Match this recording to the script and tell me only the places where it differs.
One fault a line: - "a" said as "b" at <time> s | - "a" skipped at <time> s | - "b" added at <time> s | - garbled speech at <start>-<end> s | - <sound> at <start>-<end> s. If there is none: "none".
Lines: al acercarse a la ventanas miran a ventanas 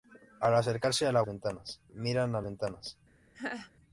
- laugh at 3.3-3.7 s